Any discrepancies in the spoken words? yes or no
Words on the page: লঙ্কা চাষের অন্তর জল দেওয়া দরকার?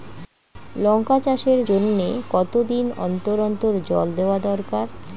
yes